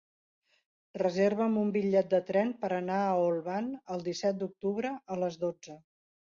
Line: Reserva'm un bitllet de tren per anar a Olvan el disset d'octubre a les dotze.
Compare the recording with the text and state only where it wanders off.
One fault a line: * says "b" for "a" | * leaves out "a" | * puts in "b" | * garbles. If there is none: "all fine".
all fine